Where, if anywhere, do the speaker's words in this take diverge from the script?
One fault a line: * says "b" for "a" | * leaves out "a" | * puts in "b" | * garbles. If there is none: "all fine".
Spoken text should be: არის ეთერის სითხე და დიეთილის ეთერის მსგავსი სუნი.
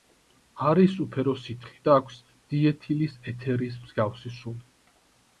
* says "უფერო" for "ეთერის"
* puts in "აქვს"